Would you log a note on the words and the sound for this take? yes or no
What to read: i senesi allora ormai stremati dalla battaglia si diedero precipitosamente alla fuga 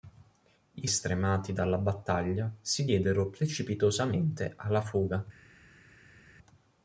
yes